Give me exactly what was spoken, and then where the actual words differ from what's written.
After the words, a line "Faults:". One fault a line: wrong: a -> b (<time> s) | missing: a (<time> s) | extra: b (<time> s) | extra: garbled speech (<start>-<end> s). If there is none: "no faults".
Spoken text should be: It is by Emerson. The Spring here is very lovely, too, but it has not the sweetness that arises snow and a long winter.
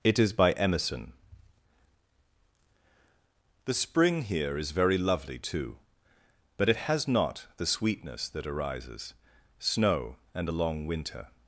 It is by Emerson. The Spring here is very lovely, too, but it has not the sweetness that arises snow and a long winter.
Faults:
no faults